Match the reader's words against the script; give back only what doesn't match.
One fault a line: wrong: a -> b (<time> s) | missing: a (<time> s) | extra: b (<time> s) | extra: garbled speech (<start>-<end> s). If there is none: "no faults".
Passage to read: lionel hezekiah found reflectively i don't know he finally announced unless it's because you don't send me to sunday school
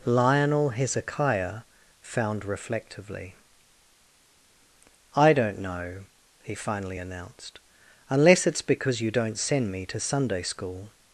no faults